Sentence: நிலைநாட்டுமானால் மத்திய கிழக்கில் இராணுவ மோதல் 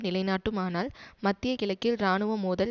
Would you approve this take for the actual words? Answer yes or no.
yes